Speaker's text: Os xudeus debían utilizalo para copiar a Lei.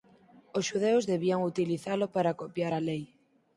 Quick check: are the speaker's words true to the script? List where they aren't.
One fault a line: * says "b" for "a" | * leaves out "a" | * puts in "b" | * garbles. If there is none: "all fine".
all fine